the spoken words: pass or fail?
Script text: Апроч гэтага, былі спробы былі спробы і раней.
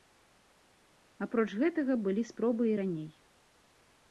fail